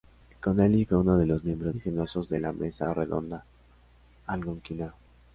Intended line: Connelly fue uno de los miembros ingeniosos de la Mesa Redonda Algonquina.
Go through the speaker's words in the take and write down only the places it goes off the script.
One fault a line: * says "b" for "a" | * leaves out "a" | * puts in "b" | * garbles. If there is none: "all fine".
all fine